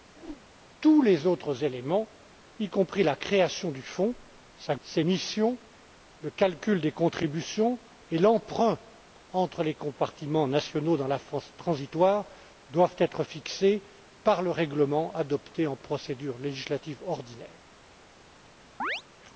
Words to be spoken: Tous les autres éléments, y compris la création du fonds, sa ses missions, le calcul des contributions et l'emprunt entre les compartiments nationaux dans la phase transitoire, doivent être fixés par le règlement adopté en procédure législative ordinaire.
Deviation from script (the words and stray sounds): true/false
true